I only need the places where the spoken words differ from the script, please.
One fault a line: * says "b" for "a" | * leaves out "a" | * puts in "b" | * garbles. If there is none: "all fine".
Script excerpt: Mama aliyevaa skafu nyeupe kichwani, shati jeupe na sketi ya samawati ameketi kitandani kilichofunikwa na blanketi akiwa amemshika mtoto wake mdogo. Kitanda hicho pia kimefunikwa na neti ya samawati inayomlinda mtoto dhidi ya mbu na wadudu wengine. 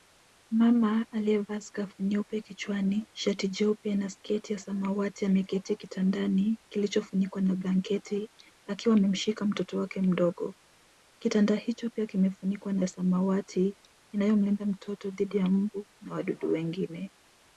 * leaves out "neti"